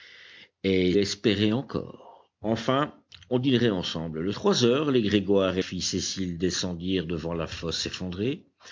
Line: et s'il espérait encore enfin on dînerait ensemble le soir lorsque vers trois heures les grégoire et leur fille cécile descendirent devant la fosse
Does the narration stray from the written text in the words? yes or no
yes